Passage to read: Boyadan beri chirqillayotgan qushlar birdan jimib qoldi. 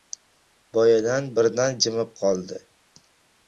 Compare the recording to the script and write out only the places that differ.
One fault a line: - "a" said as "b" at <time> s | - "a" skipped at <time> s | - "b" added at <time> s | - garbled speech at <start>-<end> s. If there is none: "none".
- "beri chirqillayotgan qushlar" skipped at 1.3 s